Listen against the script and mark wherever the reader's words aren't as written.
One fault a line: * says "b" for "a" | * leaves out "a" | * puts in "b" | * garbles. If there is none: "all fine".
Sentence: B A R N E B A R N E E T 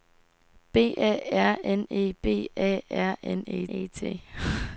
all fine